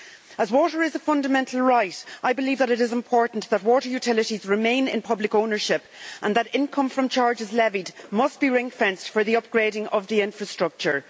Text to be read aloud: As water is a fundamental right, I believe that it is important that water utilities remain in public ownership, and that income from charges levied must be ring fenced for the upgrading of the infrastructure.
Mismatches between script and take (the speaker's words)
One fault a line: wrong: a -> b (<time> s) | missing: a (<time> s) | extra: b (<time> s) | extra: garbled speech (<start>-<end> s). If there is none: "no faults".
no faults